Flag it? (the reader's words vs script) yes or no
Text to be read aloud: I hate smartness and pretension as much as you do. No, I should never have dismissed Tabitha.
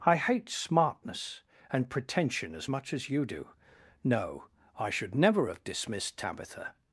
no